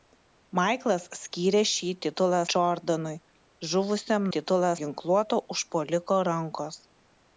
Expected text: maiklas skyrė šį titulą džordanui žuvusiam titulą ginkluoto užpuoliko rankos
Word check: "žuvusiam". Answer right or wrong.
right